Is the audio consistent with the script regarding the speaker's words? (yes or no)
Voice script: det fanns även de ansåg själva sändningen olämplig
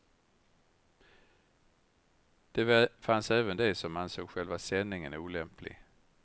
no